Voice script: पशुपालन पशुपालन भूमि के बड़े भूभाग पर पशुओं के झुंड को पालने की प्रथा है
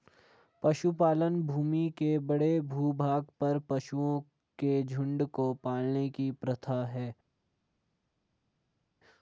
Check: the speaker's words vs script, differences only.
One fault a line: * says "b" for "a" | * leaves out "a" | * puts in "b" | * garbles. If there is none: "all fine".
* leaves out "पशुपालन"